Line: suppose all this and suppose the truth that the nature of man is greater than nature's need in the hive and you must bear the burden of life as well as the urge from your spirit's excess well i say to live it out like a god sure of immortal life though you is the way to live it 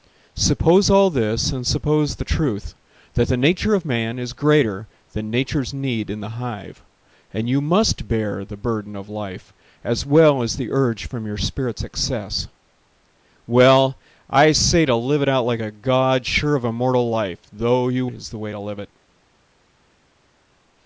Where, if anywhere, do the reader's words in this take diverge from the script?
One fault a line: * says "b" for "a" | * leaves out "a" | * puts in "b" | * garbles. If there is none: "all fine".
all fine